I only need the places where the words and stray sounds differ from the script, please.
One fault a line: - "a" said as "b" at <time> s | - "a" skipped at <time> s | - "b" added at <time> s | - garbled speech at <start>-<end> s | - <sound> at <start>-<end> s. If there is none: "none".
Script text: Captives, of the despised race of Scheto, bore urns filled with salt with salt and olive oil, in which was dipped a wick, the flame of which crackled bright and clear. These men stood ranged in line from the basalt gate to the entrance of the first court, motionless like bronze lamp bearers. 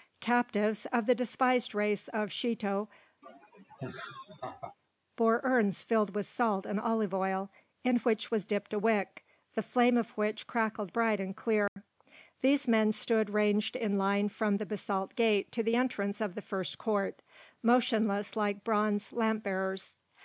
- laugh at 3.2-4.8 s
- "with salt" skipped at 6.6 s
- dropout at 11.7-11.8 s